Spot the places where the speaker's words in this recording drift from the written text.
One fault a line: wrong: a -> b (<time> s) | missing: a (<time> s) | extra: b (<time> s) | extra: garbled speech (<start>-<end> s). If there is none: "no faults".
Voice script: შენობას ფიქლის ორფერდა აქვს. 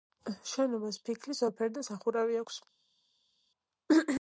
extra: სახურავი (1.9 s)